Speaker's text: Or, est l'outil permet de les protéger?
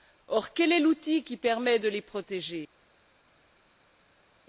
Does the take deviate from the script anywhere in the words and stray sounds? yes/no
yes